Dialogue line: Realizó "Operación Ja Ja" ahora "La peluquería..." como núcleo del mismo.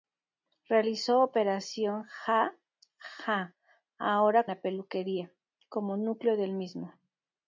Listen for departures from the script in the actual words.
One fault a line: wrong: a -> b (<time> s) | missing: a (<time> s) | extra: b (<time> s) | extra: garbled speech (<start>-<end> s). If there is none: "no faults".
no faults